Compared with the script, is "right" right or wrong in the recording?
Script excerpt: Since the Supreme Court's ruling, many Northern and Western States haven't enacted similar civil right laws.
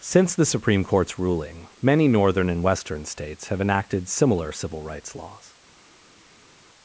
wrong